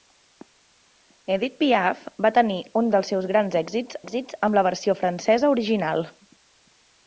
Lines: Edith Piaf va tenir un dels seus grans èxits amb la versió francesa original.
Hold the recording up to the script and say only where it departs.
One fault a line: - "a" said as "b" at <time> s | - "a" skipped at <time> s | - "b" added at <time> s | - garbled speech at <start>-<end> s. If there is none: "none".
- "èxits" added at 4.0 s